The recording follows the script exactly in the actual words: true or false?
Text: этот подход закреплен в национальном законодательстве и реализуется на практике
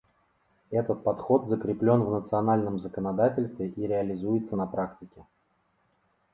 true